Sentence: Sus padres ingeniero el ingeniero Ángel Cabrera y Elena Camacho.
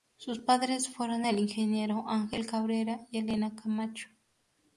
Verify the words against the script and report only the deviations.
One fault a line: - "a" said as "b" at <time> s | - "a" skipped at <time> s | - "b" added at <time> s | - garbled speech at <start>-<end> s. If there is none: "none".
- "ingeniero" said as "fueron" at 0.9 s